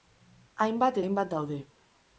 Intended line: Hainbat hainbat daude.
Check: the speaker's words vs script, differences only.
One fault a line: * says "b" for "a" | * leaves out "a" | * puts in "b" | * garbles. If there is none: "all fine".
all fine